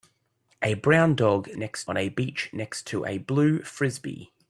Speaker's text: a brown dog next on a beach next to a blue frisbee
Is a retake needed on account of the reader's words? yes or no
no